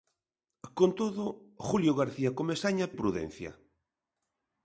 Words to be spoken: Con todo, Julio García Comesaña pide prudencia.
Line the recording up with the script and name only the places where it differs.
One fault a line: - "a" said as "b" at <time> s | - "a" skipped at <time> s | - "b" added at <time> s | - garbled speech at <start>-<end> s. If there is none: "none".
- "pide" skipped at 2.9 s